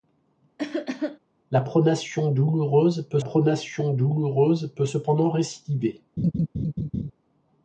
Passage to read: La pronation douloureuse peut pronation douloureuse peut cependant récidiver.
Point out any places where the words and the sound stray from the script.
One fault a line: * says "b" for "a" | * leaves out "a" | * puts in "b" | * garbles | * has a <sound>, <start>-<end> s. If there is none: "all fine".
* has a cough, 0.6-1.2 s
* has a laugh, 6.2-7.1 s